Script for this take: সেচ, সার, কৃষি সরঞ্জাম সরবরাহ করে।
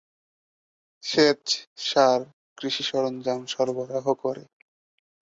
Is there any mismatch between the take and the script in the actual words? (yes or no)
no